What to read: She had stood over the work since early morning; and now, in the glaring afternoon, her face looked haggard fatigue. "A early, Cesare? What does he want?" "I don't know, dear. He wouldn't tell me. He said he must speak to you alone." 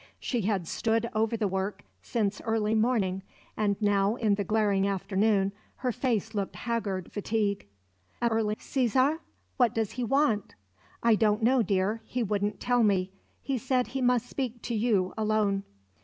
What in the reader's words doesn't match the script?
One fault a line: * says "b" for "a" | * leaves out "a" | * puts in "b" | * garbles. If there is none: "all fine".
all fine